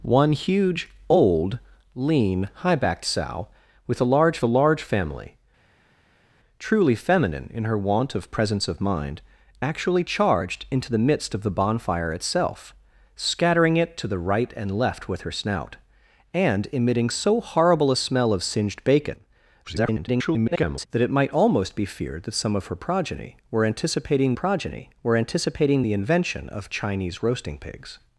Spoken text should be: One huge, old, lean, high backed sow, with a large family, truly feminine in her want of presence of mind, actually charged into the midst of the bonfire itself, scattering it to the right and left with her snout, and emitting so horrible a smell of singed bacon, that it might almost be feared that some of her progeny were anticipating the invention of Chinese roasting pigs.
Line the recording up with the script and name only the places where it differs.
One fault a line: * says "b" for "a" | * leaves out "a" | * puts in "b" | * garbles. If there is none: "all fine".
* puts in "a large"
* garbles
* puts in "progeny were anticipating"